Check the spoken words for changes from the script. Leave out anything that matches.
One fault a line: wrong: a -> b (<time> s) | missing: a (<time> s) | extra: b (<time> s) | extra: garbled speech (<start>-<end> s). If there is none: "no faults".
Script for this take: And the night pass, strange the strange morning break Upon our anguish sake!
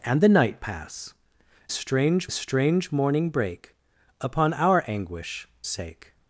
no faults